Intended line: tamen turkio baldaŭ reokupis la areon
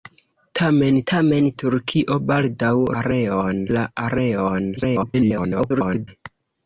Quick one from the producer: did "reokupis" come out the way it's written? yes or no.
no